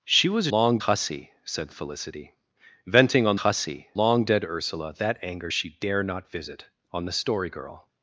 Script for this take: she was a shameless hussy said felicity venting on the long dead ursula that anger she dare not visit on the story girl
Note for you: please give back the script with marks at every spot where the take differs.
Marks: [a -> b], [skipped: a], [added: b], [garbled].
she was a [shameless -> long] hussy said felicity venting on [the -> hussy] long dead ursula that anger she dare not visit on the story girl